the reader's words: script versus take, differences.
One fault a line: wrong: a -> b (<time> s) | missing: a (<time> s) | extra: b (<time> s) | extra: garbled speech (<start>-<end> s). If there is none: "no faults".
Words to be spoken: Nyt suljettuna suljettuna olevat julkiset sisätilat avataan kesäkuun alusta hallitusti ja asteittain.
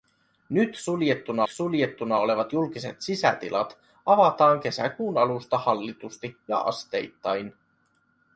no faults